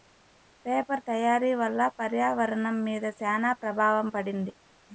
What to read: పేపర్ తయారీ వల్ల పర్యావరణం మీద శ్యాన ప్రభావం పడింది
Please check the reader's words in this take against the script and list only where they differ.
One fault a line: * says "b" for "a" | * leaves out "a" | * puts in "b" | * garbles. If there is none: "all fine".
all fine